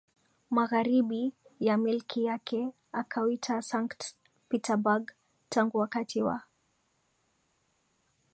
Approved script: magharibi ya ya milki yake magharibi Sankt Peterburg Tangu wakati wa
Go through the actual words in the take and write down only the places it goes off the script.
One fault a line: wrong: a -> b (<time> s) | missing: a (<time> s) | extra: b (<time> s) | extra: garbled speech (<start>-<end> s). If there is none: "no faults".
missing: ya (1.8 s)
wrong: magharibi -> akauita (2.9 s)